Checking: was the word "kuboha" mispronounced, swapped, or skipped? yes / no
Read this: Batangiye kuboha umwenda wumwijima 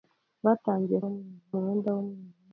yes